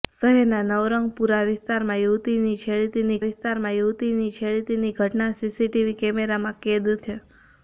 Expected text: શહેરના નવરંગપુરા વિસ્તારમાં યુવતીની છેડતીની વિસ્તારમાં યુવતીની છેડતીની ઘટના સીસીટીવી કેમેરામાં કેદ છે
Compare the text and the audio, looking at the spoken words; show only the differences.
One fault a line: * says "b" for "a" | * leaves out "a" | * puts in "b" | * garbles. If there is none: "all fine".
all fine